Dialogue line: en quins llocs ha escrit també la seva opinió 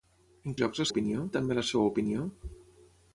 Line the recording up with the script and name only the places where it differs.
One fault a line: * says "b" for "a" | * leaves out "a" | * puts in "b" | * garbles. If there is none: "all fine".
* leaves out "quins"
* says "opinió" for "escrit"